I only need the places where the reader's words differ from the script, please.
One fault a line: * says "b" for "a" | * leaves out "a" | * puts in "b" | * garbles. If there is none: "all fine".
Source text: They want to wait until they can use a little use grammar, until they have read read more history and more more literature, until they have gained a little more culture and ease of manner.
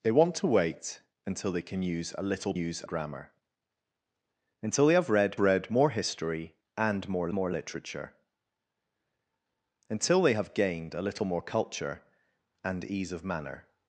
all fine